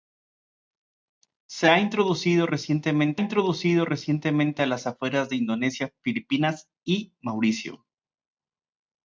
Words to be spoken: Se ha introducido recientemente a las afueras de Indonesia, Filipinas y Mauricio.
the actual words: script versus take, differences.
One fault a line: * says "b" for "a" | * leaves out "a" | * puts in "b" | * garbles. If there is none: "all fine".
* puts in "introducido recientemente"